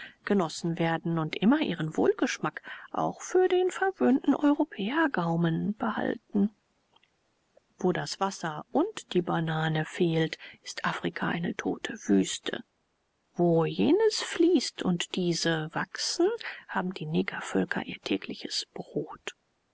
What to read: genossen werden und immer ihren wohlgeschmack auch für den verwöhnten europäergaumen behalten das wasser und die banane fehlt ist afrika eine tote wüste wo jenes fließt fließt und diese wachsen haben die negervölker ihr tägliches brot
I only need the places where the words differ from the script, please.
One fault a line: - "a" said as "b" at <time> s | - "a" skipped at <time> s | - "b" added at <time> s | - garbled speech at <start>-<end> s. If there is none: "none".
- "wo" added at 7.8 s
- "fließt" skipped at 14.8 s